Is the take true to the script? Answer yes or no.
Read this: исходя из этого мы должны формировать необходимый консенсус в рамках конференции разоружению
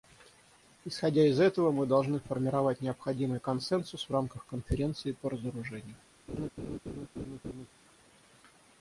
no